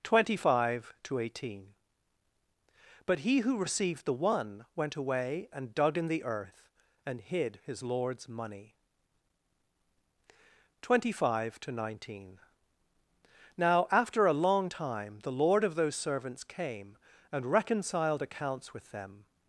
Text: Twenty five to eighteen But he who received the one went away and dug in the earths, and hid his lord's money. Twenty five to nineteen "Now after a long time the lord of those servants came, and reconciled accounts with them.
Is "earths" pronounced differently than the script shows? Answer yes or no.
yes